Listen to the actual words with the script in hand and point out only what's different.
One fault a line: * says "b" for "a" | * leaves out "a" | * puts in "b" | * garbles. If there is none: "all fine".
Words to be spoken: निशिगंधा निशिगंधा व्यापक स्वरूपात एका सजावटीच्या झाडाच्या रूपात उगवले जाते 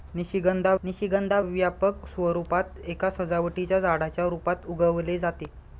all fine